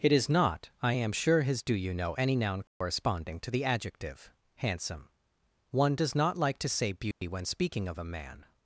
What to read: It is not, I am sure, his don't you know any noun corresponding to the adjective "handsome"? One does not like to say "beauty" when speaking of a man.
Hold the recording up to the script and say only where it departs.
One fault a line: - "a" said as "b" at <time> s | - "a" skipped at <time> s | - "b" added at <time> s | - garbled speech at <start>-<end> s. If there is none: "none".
- "don't" said as "do" at 1.6 s